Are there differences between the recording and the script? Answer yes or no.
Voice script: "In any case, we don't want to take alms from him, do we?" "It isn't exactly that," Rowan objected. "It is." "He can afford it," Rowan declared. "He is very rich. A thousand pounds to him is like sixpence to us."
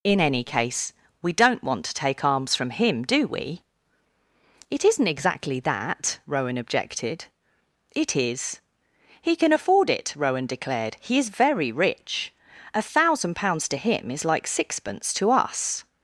yes